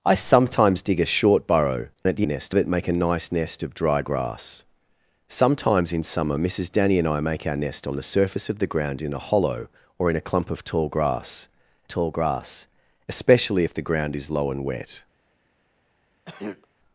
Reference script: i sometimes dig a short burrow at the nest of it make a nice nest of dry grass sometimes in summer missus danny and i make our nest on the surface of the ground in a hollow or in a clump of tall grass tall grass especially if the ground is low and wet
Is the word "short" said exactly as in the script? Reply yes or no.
yes